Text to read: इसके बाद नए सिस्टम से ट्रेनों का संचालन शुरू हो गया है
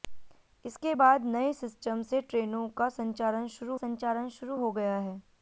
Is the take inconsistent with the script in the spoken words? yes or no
yes